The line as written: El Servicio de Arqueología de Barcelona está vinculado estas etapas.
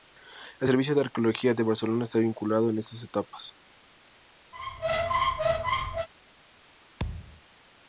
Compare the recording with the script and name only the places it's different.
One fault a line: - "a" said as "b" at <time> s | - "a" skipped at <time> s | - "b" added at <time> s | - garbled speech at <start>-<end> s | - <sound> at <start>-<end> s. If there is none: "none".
- "en" added at 2.7 s
- squeak at 4.5-6.1 s
- thud at 7.0-7.4 s